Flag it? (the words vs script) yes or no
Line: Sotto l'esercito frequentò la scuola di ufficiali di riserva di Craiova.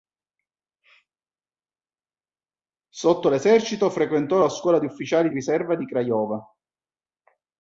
yes